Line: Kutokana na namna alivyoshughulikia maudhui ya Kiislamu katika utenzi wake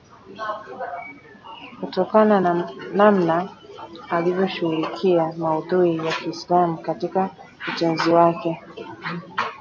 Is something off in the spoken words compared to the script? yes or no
no